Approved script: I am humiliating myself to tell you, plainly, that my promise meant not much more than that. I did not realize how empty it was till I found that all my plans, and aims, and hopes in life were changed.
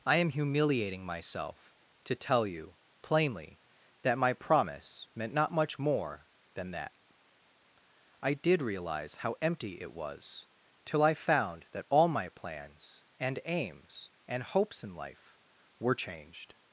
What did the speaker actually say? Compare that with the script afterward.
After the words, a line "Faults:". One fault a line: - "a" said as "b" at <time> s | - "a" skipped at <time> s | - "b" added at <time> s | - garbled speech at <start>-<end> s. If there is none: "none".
I am humiliating myself to tell you, plainly, that my promise meant not much more than that. I did realize how empty it was till I found that all my plans, and aims, and hopes in life were changed.
Faults:
- "not" skipped at 8.6 s